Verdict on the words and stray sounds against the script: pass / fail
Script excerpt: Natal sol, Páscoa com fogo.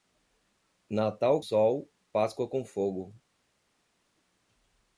pass